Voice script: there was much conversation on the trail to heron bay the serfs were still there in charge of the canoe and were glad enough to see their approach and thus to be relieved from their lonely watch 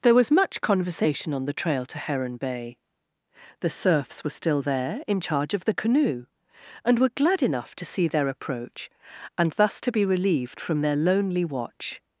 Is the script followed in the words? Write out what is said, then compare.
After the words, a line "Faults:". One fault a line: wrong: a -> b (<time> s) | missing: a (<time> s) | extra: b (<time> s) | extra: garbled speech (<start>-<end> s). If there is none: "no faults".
there was much conversation on the trail to heron bay the serfs were still there in charge of the canoe and were glad enough to see their approach and thus to be relieved from their lonely watch
Faults:
no faults